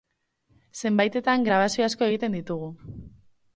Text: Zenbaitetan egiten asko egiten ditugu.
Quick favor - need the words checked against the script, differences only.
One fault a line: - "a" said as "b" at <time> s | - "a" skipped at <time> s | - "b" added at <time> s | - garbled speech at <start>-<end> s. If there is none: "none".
- "egiten" said as "grabazio" at 1.5 s